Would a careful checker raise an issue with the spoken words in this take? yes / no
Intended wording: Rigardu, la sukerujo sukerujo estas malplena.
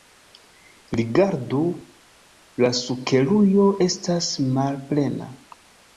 yes